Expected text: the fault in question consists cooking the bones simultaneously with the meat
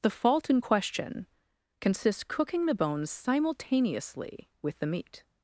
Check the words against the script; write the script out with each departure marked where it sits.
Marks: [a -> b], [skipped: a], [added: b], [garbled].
the fault in question consists cooking the bones simultaneously with the meat